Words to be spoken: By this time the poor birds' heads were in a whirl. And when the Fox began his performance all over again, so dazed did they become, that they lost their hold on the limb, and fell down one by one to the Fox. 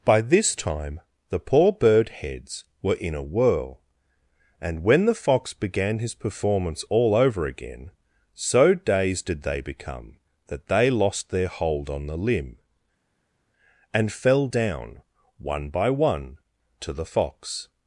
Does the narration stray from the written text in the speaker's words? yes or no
yes